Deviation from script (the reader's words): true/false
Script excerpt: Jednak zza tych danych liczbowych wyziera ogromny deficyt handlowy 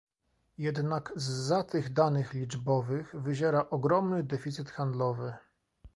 false